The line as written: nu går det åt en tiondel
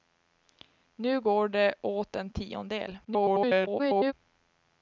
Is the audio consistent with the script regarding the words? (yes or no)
no